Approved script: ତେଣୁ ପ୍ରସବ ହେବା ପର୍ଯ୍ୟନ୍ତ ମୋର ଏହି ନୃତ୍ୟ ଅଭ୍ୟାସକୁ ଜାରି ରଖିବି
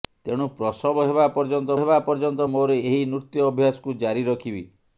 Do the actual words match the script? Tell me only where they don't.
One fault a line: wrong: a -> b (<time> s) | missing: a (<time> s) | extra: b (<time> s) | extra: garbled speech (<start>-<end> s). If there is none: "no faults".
extra: ହେବା ପର୍ଯ୍ୟନ୍ତ (1.8 s)